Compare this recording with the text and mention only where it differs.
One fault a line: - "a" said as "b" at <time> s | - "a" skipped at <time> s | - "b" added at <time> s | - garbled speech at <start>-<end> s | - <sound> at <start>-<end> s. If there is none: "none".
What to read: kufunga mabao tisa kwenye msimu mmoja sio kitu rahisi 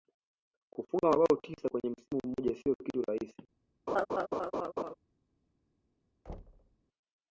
- laugh at 3.9-4.9 s
- thud at 6.3-6.8 s